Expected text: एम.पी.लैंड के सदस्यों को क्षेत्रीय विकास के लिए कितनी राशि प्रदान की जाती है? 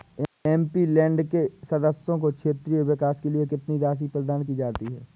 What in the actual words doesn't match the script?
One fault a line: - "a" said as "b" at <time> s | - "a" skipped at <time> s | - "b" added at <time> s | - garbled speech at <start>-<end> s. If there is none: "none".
none